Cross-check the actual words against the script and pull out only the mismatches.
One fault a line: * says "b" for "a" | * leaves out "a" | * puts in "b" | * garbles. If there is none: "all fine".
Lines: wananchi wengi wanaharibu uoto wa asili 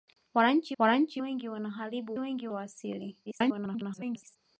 * puts in "wananchi"
* says "wengi" for "uoto"
* garbles